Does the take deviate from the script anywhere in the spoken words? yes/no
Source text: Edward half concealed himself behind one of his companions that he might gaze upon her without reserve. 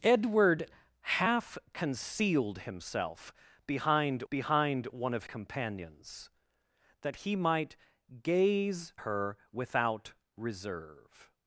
yes